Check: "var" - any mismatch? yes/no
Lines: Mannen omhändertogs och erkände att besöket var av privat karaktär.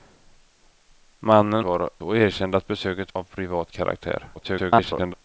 yes